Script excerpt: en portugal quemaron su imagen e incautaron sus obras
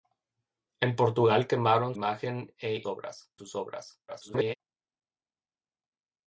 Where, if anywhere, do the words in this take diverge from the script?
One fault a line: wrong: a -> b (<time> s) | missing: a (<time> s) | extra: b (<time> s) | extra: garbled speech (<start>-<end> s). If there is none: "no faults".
missing: su (1.9 s)
wrong: incautaron -> obras (2.9 s)
extra: garbled speech (4.1-4.6 s)